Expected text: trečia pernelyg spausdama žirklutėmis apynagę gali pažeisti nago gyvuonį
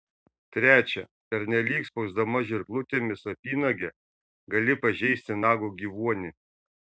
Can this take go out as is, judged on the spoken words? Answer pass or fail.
pass